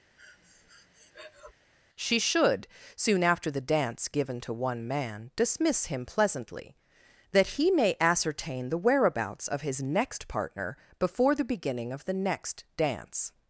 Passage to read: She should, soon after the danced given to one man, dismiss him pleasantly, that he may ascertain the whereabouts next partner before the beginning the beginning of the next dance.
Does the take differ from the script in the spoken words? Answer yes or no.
yes